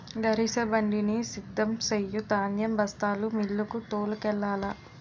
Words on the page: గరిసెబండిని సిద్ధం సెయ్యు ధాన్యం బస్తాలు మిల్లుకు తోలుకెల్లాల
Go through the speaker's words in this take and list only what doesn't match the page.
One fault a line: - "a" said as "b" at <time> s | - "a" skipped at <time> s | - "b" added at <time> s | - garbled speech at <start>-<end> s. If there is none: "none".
none